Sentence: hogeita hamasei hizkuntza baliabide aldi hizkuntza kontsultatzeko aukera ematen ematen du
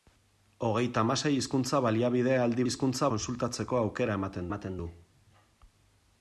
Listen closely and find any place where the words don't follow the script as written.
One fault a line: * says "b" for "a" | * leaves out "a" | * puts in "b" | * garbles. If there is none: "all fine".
all fine